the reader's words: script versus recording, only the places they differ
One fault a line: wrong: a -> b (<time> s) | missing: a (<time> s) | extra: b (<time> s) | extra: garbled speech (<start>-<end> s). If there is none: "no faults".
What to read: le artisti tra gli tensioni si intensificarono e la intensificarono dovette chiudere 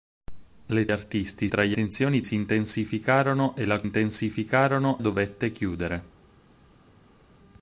no faults